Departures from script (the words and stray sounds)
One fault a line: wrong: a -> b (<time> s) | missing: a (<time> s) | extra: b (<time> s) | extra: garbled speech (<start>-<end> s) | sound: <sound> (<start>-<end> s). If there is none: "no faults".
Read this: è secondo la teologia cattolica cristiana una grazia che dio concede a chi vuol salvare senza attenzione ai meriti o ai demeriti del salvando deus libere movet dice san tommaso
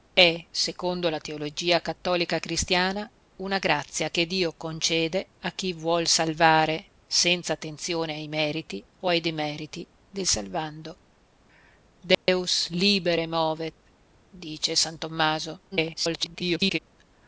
sound: dropout (12.1-12.3 s)
extra: garbled speech (15.7-16.8 s)